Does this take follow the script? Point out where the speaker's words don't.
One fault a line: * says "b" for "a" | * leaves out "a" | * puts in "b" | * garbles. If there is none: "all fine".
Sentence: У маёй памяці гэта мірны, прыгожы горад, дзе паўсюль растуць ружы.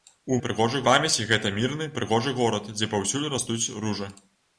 * says "прыгожы" for "маёй"